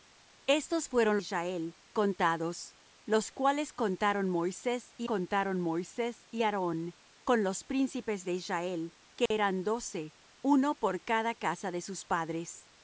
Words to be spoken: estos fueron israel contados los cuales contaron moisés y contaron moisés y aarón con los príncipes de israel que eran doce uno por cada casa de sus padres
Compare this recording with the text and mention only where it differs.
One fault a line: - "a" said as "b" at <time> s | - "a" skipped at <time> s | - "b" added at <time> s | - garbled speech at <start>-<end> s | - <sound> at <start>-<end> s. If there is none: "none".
- dropout at 9.3-9.3 s